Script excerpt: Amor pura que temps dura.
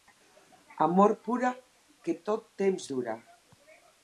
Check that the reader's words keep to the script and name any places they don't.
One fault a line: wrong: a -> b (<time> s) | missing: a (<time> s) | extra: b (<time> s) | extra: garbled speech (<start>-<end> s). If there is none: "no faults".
extra: tot (2.3 s)